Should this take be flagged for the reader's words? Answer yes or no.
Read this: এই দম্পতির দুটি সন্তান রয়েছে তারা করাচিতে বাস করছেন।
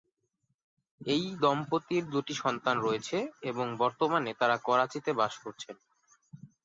yes